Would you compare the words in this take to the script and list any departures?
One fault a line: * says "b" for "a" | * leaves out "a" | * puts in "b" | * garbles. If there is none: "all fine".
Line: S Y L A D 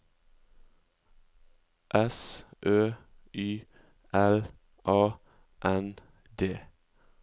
* puts in "Ø"
* puts in "N"